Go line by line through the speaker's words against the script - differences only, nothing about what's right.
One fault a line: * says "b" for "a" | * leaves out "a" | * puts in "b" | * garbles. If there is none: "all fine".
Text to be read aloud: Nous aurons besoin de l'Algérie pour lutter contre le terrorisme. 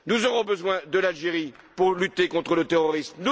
all fine